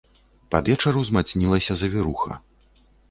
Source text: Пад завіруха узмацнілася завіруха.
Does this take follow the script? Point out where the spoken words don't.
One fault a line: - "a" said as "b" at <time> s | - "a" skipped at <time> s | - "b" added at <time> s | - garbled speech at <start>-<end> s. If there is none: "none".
- "завіруха" said as "вечар" at 0.7 s